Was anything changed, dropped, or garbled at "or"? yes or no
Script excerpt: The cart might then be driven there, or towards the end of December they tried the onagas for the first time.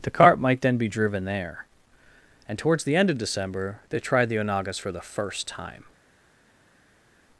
yes